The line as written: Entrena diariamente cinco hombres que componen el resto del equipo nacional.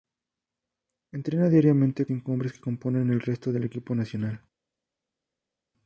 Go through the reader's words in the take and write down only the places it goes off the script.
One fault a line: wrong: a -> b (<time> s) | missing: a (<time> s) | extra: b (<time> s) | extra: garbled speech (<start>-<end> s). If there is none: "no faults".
no faults